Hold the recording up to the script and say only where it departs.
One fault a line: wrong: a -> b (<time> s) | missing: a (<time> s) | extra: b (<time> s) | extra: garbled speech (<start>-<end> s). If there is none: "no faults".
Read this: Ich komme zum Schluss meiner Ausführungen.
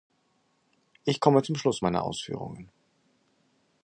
no faults